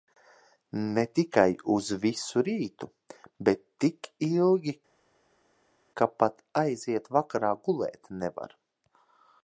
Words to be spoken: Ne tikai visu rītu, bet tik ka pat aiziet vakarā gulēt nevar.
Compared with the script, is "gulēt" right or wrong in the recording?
right